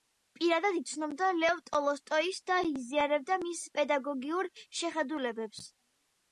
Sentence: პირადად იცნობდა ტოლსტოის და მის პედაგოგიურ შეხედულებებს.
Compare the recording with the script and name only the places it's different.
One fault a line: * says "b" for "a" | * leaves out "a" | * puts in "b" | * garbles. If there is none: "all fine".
* puts in "ლევ"
* puts in "იზიარებდა"